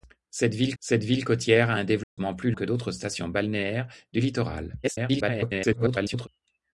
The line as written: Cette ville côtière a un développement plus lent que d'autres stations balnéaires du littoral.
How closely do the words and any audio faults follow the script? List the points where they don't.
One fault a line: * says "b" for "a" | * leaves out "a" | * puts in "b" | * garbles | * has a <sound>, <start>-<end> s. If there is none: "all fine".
* puts in "cette ville"
* has a dropout, 2.0-2.2 s
* leaves out "lent"
* garbles